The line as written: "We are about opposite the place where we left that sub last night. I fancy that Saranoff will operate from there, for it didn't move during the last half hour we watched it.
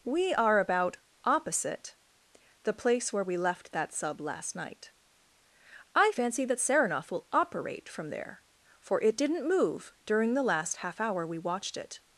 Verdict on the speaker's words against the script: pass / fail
pass